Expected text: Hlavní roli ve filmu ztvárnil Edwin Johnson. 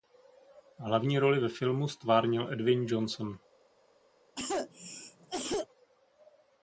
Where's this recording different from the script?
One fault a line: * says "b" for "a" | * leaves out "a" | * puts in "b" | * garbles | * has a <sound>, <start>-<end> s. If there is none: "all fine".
* has a cough, 4.3-5.7 s